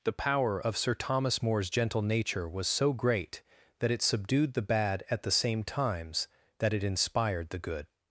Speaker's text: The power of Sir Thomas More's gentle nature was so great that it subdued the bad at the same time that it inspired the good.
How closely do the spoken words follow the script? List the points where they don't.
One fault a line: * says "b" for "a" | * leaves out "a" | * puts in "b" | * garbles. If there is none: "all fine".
* says "times" for "time"